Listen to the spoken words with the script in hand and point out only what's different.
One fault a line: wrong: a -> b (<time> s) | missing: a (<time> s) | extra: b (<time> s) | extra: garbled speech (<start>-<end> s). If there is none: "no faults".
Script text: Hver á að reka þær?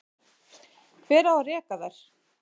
no faults